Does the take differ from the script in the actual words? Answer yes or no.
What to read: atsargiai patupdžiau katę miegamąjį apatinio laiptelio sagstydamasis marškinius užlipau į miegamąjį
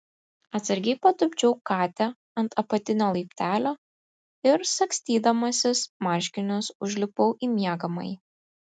yes